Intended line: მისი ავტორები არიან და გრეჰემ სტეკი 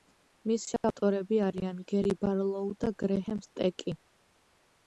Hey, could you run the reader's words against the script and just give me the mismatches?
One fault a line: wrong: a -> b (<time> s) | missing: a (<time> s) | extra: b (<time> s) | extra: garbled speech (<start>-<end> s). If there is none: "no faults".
extra: გერი ბარლოუ (1.9 s)